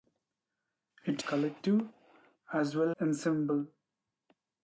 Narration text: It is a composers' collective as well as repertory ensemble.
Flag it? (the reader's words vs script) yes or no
yes